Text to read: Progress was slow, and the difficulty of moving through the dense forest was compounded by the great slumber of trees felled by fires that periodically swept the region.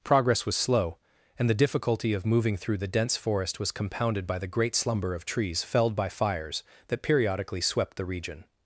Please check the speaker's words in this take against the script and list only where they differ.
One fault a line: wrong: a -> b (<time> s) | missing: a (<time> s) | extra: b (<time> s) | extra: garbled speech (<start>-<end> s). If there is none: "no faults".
no faults